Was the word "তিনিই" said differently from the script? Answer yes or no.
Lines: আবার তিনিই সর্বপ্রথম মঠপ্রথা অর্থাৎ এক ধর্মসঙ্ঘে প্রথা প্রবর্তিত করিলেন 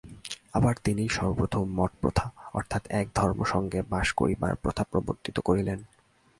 no